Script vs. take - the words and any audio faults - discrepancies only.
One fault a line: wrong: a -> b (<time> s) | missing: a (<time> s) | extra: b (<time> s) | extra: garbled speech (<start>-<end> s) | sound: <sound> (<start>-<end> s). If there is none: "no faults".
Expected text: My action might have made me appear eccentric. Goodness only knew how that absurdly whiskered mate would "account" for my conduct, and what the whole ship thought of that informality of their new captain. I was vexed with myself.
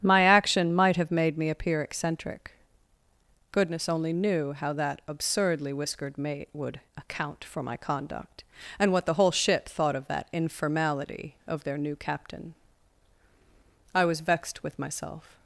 no faults